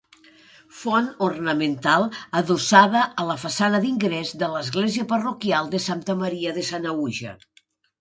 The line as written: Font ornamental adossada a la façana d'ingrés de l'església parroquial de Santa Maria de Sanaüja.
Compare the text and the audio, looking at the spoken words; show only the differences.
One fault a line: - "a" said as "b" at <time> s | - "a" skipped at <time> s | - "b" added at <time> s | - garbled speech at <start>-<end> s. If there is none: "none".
none